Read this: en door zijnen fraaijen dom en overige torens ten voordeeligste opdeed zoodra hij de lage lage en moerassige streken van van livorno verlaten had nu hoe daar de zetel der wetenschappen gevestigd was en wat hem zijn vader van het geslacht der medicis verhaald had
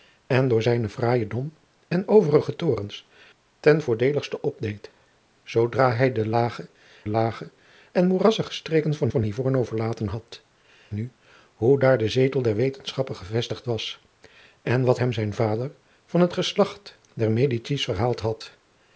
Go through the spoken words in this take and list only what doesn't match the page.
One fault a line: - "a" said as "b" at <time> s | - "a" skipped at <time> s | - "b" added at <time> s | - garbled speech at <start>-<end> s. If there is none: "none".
none